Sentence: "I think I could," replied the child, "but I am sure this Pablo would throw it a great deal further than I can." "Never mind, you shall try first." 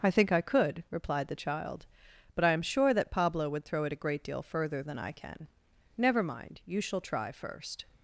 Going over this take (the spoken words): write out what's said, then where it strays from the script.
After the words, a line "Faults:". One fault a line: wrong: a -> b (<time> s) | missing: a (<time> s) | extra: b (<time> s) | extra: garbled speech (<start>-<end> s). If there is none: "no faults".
"I think I could," replied the child, "but I am sure that Pablo would throw it a great deal further than I can." "Never mind, you shall try first."
Faults:
wrong: this -> that (2.9 s)